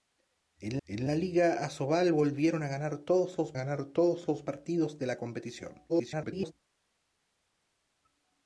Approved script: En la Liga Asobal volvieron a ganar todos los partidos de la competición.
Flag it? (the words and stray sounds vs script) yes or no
yes